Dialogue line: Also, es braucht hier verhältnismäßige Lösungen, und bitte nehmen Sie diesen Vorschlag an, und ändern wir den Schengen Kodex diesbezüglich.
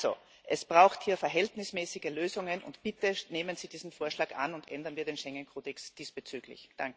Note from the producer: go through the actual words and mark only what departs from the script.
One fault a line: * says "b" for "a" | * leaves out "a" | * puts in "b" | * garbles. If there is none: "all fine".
all fine